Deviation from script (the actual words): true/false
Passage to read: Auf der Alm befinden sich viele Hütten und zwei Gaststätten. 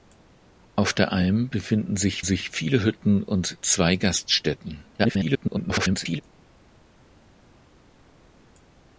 true